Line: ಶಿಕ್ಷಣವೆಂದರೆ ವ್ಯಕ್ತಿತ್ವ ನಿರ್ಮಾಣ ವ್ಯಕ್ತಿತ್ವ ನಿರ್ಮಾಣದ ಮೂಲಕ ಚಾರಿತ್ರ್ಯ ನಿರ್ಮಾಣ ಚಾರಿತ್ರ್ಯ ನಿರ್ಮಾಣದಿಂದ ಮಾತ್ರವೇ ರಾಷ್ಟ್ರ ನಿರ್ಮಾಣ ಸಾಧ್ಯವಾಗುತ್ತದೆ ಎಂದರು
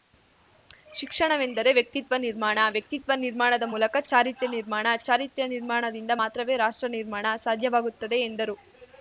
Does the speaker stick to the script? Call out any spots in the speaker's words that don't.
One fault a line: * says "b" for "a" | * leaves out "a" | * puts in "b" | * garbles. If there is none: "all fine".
all fine